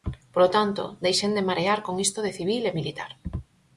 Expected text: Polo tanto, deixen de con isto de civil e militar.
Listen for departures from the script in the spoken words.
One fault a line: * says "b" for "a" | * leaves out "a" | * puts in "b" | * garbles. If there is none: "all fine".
* puts in "marear"